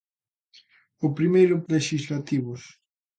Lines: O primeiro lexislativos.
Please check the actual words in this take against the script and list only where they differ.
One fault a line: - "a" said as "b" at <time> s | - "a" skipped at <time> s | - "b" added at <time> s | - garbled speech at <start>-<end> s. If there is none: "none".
none